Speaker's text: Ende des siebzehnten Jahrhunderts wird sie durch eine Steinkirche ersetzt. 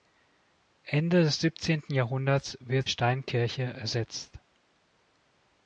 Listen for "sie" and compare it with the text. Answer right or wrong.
wrong